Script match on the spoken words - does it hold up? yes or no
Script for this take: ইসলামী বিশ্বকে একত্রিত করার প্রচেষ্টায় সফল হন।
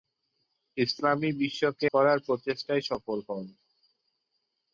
no